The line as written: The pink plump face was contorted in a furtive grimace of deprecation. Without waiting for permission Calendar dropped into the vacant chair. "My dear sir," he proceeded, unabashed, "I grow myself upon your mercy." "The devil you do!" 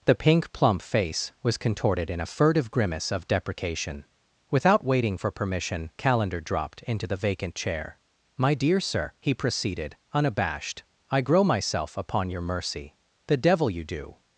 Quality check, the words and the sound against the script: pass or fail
pass